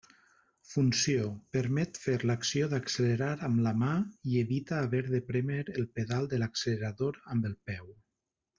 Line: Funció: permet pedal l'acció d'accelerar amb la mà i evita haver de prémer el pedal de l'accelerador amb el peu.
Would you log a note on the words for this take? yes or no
yes